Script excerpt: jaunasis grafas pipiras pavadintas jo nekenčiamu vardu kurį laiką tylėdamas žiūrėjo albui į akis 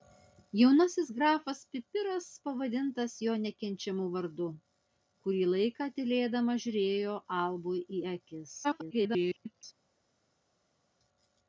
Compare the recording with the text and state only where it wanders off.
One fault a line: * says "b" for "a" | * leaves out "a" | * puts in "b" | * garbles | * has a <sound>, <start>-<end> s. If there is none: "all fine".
* garbles